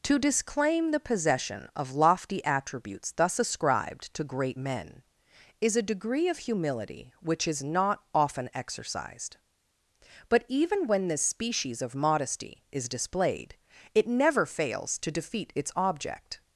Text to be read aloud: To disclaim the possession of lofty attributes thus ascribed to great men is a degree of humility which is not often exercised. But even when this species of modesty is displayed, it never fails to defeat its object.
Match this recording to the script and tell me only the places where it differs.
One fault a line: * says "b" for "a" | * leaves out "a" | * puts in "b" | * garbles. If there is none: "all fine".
all fine